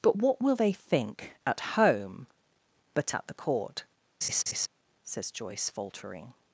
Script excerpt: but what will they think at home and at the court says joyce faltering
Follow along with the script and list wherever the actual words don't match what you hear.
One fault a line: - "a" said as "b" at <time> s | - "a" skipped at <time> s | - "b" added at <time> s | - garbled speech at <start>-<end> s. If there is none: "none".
- "and" said as "but" at 2.9 s